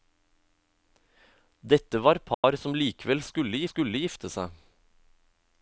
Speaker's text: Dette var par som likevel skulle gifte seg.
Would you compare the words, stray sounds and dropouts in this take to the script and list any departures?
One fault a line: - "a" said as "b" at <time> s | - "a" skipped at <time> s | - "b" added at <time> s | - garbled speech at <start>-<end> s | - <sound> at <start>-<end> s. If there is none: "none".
- dropout at 2.3-2.4 s
- "skulle" added at 3.7 s